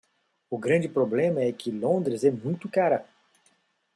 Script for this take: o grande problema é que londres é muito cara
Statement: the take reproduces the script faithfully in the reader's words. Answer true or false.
true